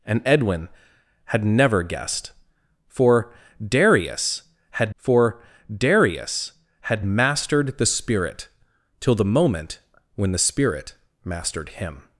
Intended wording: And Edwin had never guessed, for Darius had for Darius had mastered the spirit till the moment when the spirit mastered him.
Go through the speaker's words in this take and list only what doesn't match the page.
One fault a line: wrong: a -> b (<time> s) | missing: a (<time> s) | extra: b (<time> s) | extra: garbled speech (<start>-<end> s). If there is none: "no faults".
no faults